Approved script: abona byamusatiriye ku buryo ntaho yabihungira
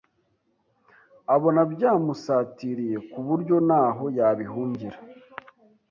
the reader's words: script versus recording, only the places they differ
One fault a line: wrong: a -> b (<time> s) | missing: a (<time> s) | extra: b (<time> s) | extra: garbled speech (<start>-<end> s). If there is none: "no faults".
no faults